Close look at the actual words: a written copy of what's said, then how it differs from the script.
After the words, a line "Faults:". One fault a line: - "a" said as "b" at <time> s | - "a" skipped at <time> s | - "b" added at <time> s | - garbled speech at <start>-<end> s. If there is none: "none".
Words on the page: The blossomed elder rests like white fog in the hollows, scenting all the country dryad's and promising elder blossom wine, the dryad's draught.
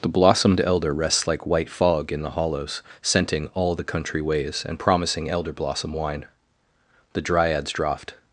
The blossomed elder rests like white fog in the hollows, scenting all the country ways and promising elder blossom wine, the dryad's draught.
Faults:
- "dryad's" said as "ways" at 4.2 s